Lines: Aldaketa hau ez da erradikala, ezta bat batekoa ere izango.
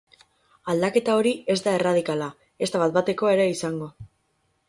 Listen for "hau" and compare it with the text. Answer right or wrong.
wrong